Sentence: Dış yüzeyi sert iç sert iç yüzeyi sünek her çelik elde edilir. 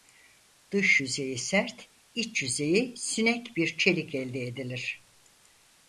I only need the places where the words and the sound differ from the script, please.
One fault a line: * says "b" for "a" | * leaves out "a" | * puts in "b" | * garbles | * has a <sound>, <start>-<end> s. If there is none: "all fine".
* leaves out "sert iç"
* says "bir" for "her"